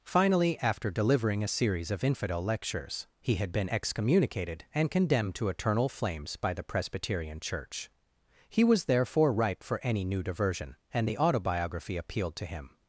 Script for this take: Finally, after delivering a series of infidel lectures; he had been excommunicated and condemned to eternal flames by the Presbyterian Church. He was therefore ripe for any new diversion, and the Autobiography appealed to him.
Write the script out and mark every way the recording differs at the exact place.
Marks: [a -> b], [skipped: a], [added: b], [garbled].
Finally, after delivering a series of infidel lectures; he had been excommunicated and condemned to eternal flames by the Presbyterian Church. He was therefore ripe for any new diversion, and the Autobiography appealed to him.